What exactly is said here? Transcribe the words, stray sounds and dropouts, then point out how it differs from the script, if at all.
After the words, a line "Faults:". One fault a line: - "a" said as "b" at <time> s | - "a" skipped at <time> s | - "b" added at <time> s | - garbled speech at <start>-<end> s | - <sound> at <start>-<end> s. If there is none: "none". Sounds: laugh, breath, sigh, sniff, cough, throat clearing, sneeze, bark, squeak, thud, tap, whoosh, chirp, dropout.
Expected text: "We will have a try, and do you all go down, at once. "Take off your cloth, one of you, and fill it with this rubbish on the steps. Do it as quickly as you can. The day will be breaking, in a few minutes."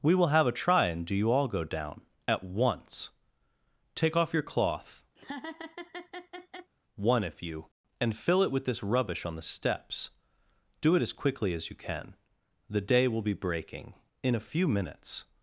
"We will have a try, and do you all go down, at once. "Take off your cloth, one if you, and fill it with this rubbish on the steps. Do it as quickly as you can. The day will be breaking, in a few minutes."
Faults:
- laugh at 5.2-6.7 s
- "of" said as "if" at 7.2 s